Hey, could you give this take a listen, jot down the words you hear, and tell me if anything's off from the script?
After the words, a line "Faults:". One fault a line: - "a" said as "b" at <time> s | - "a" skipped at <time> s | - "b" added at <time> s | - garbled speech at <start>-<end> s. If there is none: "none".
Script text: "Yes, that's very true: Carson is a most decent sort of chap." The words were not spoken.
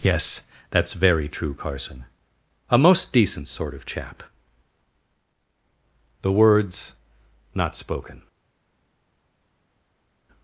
"Yes, that's very true: Carson a most decent sort of chap." The words not spoken.
Faults:
- "is" skipped at 2.0 s
- "were" skipped at 6.9 s